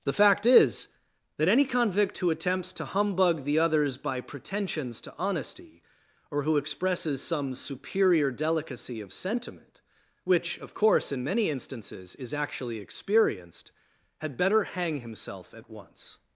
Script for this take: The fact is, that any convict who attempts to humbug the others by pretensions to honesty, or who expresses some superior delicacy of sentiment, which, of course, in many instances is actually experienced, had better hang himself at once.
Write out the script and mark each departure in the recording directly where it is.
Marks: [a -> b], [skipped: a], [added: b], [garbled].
The fact is, that any convict who attempts to humbug the others by pretensions to honesty, or who expresses some superior delicacy of sentiment, which, of course, in many instances is actually experienced, had better hang himself at once.